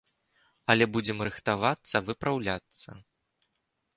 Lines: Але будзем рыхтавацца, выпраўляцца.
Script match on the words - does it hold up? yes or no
yes